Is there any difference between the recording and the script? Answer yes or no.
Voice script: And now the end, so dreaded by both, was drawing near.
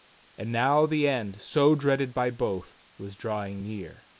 no